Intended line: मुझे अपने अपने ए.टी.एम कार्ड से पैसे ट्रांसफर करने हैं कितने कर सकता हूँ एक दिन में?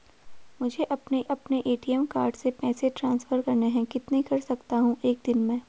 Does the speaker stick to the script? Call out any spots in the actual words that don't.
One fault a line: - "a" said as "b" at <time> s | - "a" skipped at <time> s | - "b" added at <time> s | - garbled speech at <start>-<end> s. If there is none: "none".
none